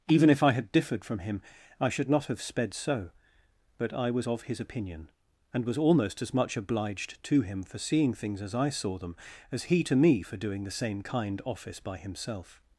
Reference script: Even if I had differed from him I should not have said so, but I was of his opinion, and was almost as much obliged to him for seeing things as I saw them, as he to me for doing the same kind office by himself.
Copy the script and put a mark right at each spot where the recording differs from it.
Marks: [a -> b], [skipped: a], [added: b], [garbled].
Even if I had differed from him I should not have [said -> sped] so, but I was of his opinion, and was almost as much obliged to him for seeing things as I saw them, as he to me for doing the same kind office by himself.